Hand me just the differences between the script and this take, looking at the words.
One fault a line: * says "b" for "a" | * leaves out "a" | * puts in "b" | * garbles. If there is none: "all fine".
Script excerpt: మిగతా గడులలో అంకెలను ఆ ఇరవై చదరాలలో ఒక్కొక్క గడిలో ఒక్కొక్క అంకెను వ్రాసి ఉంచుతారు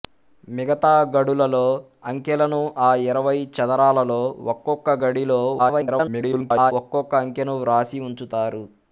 * garbles